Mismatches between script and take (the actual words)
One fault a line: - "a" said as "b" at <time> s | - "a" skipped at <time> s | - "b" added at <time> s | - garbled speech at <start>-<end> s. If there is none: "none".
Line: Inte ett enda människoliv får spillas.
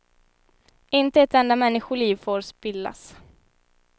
none